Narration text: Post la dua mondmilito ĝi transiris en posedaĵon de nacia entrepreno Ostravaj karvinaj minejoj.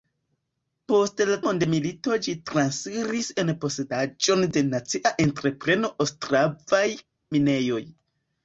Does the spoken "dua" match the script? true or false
false